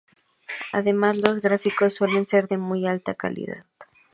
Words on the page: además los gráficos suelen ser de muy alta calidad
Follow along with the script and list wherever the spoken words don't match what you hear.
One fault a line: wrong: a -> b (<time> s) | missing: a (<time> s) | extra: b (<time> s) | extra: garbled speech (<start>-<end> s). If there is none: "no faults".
no faults